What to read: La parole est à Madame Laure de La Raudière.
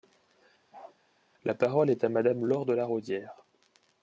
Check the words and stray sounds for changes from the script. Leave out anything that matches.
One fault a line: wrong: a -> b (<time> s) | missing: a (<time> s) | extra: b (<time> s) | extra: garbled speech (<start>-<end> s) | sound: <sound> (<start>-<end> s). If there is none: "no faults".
sound: bark (0.7-1.0 s)